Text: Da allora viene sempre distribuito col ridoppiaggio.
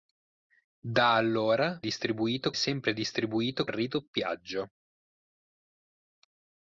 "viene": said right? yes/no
no